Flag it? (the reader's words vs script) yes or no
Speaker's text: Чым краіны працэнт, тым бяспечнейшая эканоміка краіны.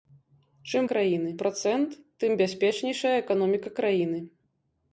no